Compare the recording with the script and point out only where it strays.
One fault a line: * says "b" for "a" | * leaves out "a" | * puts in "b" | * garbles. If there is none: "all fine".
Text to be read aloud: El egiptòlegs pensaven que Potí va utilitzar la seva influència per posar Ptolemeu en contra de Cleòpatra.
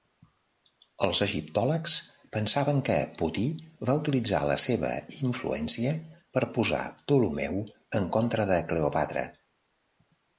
* says "Els" for "El"